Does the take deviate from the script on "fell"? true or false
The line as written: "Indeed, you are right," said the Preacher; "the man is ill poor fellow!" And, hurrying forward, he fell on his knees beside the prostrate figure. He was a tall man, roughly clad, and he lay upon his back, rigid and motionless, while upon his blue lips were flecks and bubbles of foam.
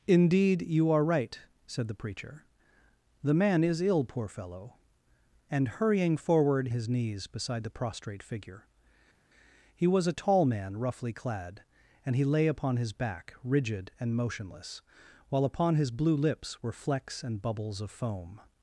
true